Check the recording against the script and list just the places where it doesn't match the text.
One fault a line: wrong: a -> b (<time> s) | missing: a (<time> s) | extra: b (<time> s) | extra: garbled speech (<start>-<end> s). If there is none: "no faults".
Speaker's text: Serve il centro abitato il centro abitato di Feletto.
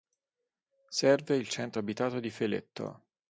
missing: il centro abitato (2.2 s)